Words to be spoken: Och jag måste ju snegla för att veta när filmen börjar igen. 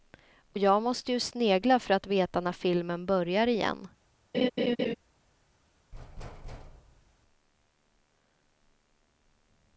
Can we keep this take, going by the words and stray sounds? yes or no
no